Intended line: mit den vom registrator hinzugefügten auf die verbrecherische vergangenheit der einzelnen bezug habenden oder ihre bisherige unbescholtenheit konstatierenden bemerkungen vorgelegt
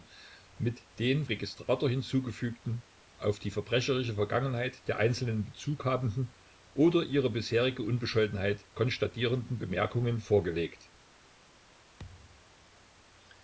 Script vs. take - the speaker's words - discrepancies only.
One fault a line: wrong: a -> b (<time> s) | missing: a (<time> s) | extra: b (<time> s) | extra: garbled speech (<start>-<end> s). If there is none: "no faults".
missing: vom (1.2 s)